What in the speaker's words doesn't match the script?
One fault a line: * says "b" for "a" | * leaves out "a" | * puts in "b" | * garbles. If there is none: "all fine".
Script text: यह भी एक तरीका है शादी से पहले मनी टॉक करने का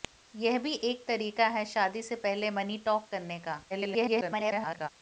* garbles